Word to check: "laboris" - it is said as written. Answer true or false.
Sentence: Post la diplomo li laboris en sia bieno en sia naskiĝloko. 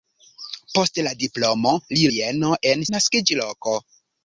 false